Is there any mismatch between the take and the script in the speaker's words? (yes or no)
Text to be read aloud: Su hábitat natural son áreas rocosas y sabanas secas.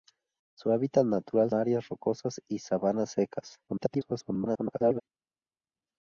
yes